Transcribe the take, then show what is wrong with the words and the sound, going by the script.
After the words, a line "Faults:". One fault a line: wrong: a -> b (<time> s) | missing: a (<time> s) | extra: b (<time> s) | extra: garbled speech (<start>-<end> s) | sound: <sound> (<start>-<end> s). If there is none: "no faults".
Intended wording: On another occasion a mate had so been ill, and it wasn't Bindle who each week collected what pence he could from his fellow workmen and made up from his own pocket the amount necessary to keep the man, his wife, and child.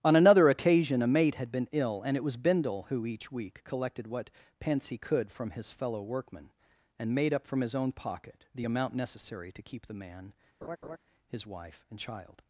On another occasion a mate had been ill, and it was Bindle who each week collected what pence he could from his fellow workmen and made up from his own pocket the amount necessary to keep the man, his wife, and child.
Faults:
missing: so (1.5 s)
wrong: wasn't -> was (2.2 s)
sound: laugh (10.6-11.0 s)